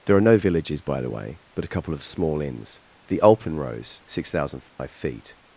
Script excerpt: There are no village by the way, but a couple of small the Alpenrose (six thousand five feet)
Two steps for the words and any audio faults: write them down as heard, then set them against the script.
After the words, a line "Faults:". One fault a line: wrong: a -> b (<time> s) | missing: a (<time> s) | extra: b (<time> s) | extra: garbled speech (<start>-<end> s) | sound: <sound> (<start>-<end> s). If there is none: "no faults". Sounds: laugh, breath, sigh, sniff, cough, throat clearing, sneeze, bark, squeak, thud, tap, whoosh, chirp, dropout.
There are no villages by the way, but a couple of small inns, the Alpenrose (six thousand five feet)
Faults:
wrong: village -> villages (0.4 s)
extra: inns (2.4 s)
sound: dropout (4.7-4.8 s)